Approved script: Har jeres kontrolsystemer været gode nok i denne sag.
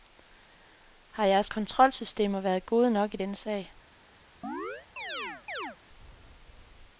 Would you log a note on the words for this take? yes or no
no